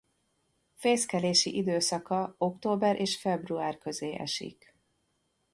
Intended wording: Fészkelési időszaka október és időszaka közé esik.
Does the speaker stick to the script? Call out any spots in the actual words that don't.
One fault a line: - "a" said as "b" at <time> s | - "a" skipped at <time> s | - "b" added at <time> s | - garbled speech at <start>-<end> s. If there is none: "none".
- "időszaka" said as "február" at 3.2 s